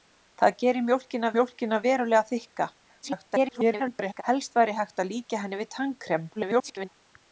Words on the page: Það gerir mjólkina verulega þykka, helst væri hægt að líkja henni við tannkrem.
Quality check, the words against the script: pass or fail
fail